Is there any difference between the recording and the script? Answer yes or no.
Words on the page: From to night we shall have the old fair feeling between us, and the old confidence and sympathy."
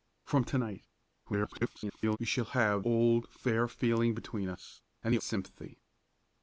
yes